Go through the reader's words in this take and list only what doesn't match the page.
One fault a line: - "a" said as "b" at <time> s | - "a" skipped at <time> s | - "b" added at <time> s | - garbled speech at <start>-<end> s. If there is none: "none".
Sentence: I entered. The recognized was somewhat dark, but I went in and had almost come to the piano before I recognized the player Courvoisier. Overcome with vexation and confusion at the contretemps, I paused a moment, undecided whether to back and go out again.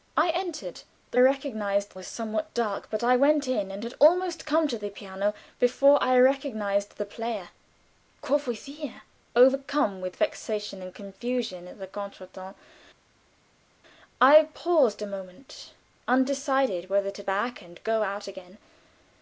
none